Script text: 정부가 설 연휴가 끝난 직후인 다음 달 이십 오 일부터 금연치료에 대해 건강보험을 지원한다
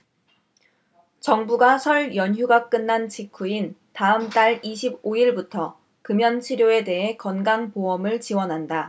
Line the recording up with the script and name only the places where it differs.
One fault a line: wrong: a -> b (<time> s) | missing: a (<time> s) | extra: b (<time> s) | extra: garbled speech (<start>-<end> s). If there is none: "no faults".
no faults